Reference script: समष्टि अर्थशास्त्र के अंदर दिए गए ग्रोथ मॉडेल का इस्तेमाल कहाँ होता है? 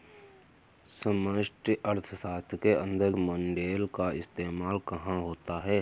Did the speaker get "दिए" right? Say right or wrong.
wrong